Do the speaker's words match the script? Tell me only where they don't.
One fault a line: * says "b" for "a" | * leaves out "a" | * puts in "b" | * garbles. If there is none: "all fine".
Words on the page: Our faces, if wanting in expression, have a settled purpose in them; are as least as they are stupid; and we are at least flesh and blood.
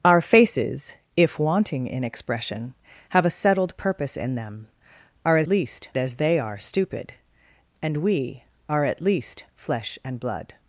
all fine